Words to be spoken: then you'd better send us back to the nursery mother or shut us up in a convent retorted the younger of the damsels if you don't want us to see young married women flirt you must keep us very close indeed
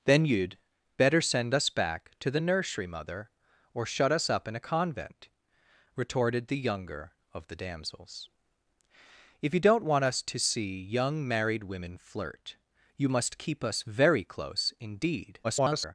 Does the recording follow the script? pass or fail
fail